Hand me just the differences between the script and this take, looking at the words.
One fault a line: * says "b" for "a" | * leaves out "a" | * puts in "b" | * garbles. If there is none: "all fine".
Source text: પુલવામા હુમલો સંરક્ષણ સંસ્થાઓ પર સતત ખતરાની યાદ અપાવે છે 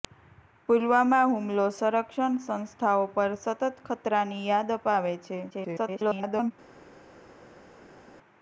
* garbles